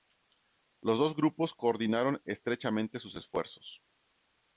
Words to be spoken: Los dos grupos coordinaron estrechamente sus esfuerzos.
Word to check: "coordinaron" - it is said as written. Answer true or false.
true